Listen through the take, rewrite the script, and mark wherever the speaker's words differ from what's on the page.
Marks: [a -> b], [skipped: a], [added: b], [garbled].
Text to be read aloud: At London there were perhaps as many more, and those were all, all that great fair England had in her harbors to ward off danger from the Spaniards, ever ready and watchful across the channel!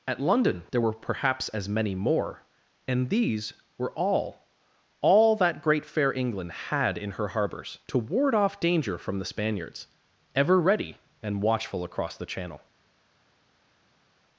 At London there were perhaps as many more, and [those -> these] were all, all that great fair England had in her harbors to ward off danger from the Spaniards, ever ready and watchful across the channel!